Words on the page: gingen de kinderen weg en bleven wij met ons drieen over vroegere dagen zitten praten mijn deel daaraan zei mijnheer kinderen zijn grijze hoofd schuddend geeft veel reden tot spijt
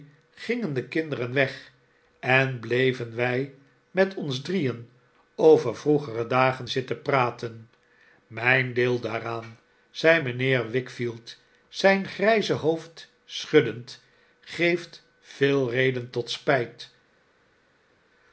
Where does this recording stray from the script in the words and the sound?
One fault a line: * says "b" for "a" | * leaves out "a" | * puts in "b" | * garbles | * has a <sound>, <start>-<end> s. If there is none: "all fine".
* says "wickfield" for "kinderen"